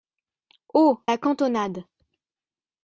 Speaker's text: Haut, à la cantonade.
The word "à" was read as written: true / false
false